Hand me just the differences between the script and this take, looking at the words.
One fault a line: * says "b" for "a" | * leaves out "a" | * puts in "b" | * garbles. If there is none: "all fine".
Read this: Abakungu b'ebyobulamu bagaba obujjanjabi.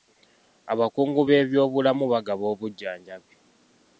all fine